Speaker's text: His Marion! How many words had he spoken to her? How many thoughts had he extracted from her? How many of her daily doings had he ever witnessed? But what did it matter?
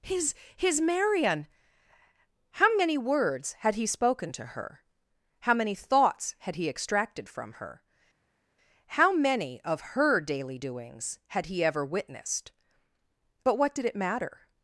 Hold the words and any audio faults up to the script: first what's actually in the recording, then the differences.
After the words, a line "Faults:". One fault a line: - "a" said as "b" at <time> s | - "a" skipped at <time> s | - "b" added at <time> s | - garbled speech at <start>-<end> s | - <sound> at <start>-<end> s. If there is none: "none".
His his Marion! How many words had he spoken to her? How many thoughts had he extracted from her? How many of her daily doings had he ever witnessed? But what did it matter?
Faults:
- "his" added at 0.6 s